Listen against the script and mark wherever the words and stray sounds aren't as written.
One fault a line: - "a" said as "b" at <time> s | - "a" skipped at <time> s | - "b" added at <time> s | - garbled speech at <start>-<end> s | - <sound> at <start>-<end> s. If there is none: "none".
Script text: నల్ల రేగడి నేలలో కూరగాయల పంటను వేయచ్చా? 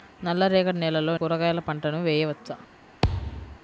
- thud at 3.0-3.6 s